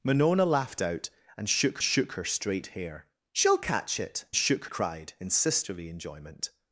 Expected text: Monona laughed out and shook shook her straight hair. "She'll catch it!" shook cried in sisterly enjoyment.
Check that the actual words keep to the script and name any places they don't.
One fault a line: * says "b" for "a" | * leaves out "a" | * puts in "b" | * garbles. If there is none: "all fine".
all fine